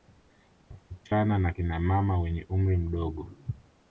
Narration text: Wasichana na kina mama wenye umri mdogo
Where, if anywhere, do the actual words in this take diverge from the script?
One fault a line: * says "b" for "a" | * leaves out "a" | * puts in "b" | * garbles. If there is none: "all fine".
all fine